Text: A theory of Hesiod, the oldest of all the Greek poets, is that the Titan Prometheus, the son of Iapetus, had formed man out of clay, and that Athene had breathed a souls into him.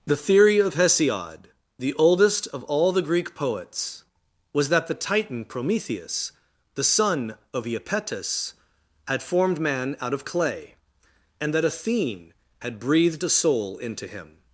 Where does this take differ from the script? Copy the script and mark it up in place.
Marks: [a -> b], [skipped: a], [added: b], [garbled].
[A -> The] theory of Hesiod, the oldest of all the Greek poets, [is -> was] that the Titan Prometheus, the son of Iapetus, had formed man out of clay, and that Athene had breathed a [souls -> soul] into him.